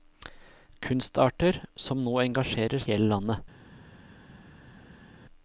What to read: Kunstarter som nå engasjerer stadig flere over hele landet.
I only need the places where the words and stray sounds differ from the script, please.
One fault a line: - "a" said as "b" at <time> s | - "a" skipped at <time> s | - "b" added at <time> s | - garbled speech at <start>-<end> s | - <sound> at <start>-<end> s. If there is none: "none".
- "stadig flere over" skipped at 2.8 s